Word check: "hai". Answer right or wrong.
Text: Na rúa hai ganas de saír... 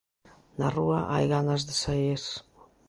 right